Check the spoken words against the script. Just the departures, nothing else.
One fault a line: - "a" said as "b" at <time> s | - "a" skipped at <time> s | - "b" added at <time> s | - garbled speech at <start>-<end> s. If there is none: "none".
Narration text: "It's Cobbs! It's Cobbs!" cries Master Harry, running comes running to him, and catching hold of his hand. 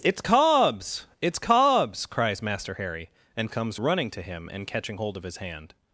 - "running" said as "and" at 3.4 s